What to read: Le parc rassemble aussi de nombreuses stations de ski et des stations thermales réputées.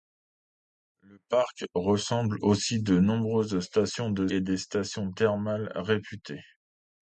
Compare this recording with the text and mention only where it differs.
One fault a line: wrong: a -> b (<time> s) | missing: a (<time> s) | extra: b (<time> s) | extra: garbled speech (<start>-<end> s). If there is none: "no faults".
missing: ski (4.3 s)